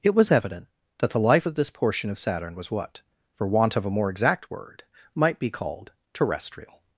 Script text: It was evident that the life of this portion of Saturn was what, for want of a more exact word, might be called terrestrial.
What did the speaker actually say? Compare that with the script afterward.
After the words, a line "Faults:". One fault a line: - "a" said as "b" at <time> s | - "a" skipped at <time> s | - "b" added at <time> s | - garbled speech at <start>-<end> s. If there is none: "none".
It was evident that the life of this portion of Saturn was what, for want of a more exact word, might be called terrestrial.
Faults:
none